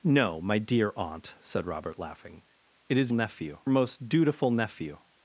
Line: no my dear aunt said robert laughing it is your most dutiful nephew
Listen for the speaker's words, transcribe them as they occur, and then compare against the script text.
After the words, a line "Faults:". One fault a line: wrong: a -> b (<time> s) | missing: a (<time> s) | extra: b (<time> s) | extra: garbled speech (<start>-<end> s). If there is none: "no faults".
no my dear aunt said robert laughing it is nephew most dutiful nephew
Faults:
wrong: your -> nephew (3.1 s)